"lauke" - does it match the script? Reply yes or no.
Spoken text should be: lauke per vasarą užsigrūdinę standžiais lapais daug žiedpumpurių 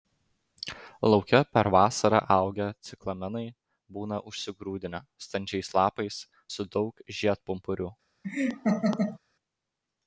yes